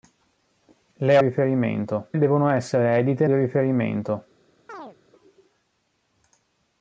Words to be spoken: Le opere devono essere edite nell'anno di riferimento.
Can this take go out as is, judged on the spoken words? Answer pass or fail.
fail